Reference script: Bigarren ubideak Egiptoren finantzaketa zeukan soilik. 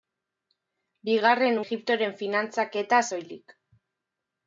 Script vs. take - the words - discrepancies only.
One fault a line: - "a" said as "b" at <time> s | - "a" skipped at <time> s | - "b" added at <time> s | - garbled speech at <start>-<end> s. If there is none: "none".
- "ubideak" skipped at 1.6 s
- "zeukan" skipped at 3.0 s